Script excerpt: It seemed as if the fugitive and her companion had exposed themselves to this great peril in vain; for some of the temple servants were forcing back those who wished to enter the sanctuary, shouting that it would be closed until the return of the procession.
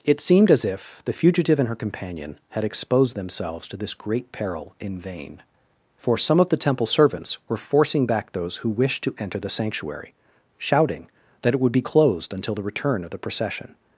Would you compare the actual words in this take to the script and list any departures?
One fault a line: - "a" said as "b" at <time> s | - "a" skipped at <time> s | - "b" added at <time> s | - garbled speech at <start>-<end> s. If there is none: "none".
none